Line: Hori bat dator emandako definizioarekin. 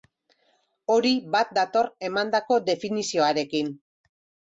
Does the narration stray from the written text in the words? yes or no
no